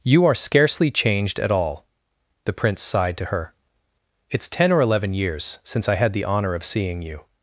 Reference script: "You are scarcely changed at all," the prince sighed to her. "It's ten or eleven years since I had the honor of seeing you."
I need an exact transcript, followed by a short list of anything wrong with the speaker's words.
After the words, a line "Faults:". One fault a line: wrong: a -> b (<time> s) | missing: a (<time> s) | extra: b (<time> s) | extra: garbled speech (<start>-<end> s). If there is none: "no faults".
"You are scarcely changed at all," the prince sighed to her. "It's ten or eleven years since I had the honor of seeing you."
Faults:
no faults